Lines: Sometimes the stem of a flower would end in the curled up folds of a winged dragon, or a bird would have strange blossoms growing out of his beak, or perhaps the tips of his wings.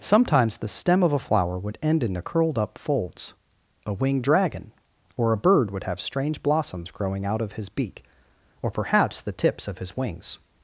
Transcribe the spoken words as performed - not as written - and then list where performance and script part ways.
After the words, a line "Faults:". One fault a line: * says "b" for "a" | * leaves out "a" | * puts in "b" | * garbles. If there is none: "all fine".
Sometimes the stem of a flower would end in the curled up folds a winged dragon, or a bird would have strange blossoms growing out of his beak, or perhaps the tips of his wings.
Faults:
* leaves out "of"